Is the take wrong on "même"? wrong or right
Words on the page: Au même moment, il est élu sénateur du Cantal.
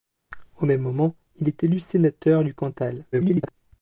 right